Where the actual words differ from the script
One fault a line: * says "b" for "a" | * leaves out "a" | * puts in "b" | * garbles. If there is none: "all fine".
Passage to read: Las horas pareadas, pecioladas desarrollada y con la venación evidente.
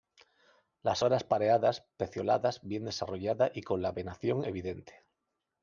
* puts in "bien"